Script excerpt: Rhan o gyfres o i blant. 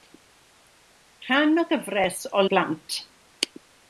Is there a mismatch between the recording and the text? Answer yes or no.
no